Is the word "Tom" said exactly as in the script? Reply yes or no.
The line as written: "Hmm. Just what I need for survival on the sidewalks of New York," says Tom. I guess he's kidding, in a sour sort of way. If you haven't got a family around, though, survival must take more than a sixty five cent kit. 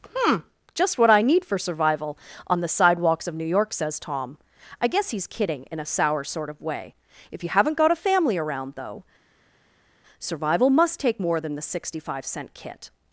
yes